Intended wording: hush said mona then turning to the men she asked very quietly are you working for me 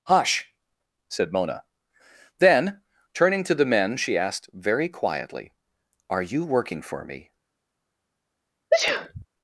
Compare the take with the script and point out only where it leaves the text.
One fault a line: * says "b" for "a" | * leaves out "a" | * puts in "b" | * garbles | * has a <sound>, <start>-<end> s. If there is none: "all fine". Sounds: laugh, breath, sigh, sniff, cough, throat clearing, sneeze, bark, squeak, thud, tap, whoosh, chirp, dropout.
* has a sneeze, 8.7-9.3 s